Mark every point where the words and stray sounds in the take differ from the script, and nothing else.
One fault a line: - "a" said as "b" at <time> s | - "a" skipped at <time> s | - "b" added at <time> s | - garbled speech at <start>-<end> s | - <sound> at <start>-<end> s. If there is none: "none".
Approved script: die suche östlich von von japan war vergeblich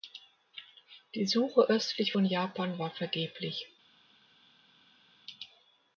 - "von" skipped at 2.3 s